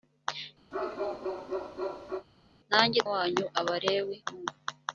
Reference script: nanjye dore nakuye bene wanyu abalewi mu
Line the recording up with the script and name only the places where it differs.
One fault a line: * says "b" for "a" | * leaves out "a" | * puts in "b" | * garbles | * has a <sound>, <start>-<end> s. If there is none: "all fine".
* has a bark, 0.7-2.3 s
* leaves out "dore nakuye bene"